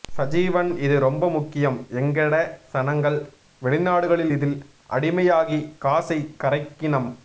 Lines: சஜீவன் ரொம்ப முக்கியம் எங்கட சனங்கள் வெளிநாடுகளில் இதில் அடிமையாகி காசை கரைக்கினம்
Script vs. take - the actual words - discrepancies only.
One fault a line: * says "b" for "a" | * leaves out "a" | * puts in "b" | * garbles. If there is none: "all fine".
* puts in "இது"